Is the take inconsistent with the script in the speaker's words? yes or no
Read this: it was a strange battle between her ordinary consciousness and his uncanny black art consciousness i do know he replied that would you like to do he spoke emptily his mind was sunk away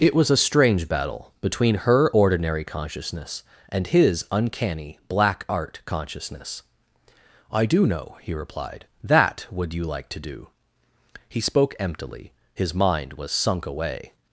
no